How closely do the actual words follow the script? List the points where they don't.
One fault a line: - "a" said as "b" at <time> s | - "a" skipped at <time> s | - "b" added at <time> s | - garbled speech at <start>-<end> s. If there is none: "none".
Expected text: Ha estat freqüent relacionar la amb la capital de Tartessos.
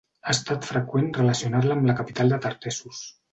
none